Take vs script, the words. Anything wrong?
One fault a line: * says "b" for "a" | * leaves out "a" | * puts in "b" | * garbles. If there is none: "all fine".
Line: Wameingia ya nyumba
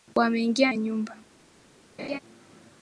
all fine